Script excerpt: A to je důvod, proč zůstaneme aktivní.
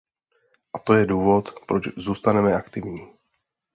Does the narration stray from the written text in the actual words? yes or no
no